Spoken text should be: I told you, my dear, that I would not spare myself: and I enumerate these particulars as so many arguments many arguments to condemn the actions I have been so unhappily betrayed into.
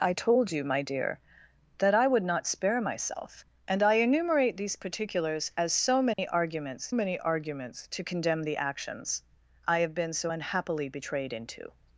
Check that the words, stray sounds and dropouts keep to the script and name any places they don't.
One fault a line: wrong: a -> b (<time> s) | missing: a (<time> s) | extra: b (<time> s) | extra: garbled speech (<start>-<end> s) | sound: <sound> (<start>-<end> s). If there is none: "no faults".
sound: dropout (6.1-6.2 s)